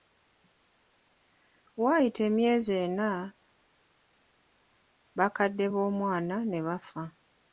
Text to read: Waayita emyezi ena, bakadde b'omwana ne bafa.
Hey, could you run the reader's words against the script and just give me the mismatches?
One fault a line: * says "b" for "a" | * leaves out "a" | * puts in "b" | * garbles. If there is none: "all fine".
all fine